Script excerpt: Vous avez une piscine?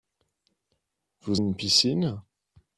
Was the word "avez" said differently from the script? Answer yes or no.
yes